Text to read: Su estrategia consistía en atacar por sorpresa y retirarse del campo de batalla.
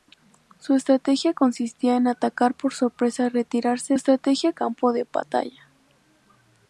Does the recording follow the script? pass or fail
fail